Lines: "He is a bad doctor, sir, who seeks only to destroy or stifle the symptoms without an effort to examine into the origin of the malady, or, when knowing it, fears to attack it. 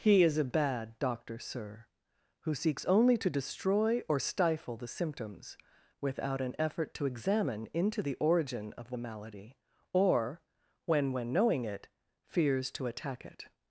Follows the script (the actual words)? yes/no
no